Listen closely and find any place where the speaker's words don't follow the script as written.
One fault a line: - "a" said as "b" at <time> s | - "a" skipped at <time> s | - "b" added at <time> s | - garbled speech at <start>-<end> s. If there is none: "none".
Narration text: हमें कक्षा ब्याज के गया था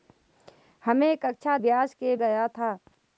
none